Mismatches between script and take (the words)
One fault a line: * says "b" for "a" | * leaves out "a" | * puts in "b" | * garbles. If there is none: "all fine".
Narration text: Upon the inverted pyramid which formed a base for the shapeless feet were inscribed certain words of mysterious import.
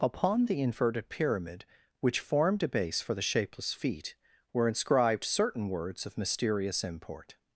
all fine